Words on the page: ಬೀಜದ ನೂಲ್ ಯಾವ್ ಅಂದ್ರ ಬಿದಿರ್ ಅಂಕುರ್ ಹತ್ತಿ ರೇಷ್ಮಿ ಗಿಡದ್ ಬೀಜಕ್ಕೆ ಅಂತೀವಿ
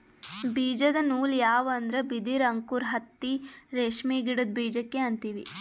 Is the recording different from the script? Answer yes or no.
no